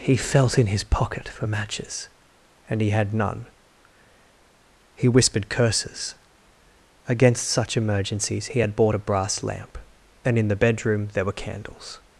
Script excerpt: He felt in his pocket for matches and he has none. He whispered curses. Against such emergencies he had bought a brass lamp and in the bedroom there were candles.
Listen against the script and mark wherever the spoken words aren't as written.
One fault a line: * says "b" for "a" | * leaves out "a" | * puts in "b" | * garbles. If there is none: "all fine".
* says "had" for "has"